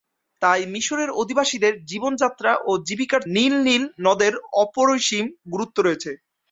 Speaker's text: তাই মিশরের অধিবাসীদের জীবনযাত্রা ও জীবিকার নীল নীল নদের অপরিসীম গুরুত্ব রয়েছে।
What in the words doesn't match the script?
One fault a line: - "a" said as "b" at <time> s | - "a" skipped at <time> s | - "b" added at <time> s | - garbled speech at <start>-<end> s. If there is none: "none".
none